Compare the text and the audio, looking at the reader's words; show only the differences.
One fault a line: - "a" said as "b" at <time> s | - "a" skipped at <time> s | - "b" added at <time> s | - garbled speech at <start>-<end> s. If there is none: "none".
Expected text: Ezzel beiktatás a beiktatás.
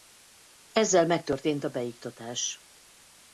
- "beiktatás" said as "megtörtént" at 1.1 s